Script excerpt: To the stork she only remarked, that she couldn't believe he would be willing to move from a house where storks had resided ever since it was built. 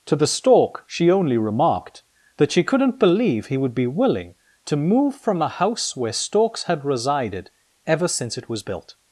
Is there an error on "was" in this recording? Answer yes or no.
no